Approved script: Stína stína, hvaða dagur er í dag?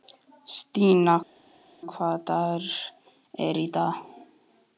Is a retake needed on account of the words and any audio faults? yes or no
yes